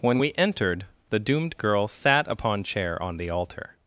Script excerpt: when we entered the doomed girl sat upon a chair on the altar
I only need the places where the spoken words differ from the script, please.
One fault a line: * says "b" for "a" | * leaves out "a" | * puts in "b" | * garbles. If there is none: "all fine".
* leaves out "a"